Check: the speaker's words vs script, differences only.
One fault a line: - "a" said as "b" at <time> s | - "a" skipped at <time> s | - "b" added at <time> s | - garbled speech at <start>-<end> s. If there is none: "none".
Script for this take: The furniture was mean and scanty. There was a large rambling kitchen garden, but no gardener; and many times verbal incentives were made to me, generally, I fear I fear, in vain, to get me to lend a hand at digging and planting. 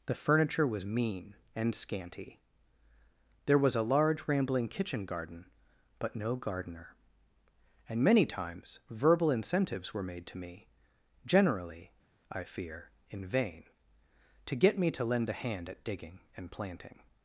- "I fear" skipped at 12.9 s